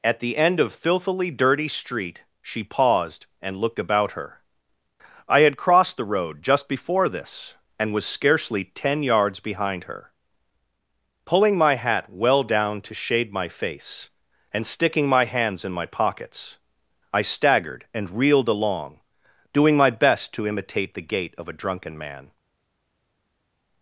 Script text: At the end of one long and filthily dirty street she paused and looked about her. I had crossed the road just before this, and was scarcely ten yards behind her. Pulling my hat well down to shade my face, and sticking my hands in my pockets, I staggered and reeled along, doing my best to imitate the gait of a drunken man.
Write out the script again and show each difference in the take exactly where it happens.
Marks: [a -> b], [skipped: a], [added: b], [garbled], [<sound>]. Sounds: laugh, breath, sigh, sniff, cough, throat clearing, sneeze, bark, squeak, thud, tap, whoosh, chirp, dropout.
At the end of [skipped: one long and] filthily dirty street she paused and looked about her. I had crossed the road just before this, and was scarcely ten yards behind her. Pulling my hat well down to shade my face, and sticking my hands in my pockets, I staggered and reeled along, doing my best to imitate the gait of a drunken man.